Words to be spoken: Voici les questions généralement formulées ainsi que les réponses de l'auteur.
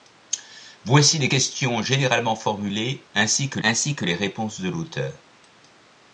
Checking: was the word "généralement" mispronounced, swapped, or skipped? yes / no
no